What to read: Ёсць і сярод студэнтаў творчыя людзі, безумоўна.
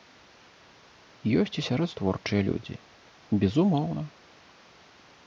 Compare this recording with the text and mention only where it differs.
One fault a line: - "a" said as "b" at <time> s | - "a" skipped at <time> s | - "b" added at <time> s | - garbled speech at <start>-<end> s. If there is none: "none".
- "студэнтаў" skipped at 1.9 s